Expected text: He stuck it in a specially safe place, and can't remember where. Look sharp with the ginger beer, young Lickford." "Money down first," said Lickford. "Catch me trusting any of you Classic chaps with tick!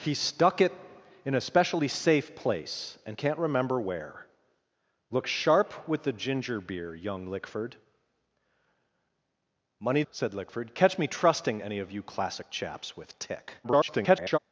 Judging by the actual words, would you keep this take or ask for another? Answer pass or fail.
fail